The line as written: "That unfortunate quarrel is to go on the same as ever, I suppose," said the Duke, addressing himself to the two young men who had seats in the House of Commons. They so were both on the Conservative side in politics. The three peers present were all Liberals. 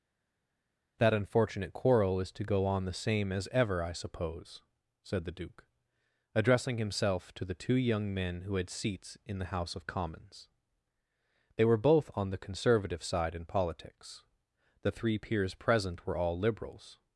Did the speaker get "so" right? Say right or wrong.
wrong